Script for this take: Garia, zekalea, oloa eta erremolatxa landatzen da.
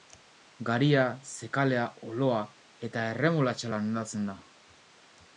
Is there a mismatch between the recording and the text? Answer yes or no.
no